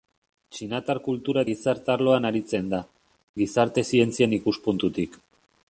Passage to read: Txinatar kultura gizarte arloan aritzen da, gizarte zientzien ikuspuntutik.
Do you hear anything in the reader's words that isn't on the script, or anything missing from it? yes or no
no